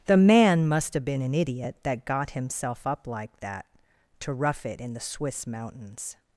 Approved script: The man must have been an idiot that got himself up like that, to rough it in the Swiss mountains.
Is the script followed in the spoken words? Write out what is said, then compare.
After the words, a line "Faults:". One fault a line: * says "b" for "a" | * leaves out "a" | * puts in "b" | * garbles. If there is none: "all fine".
The man must have been an idiot that got himself up like that, to rough it in the Swiss mountains.
Faults:
all fine